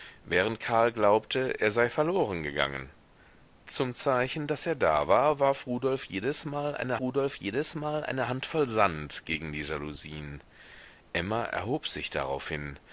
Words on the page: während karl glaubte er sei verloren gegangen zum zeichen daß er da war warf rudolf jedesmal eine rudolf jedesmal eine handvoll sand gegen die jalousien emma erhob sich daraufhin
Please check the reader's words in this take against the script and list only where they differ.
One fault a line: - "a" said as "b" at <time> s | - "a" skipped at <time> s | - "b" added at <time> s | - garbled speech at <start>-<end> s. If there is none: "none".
none